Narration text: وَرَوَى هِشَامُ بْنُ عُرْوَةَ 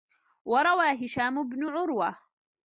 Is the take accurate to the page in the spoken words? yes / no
yes